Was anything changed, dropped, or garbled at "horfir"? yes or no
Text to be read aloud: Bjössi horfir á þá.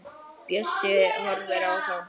no